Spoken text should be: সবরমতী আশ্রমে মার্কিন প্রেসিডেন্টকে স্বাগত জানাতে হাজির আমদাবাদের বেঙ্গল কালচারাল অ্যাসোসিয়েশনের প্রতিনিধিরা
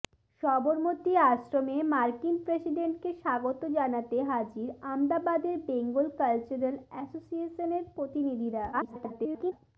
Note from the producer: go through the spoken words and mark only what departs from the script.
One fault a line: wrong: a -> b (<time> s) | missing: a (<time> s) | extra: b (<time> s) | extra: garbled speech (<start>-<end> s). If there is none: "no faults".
extra: garbled speech (8.7-9.5 s)